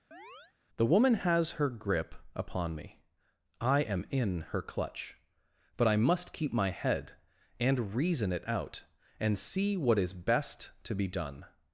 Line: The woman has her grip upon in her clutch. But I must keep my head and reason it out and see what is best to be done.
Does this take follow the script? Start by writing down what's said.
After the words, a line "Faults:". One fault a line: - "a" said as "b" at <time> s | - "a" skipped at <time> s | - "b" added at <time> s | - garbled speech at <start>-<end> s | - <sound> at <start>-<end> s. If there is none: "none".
The woman has her grip upon me. I am in her clutch. But I must keep my head and reason it out and see what is best to be done.
Faults:
- chirp at 0.1-0.5 s
- "me I am" added at 2.8 s